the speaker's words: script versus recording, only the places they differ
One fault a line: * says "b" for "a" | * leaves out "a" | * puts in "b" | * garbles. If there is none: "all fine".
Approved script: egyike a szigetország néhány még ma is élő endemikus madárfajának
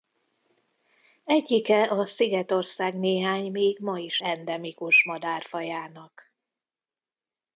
* leaves out "élő"